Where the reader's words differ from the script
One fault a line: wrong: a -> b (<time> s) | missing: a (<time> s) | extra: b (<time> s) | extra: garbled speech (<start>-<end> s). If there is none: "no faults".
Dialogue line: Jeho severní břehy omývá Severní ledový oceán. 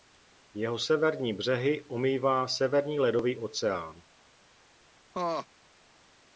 no faults